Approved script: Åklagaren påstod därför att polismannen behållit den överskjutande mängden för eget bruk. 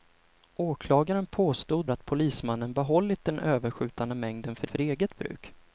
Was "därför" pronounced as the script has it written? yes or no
no